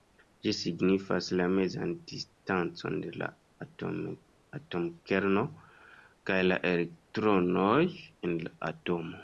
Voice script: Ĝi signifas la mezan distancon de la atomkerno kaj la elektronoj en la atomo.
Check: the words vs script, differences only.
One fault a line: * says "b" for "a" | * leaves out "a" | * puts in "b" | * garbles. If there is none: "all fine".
all fine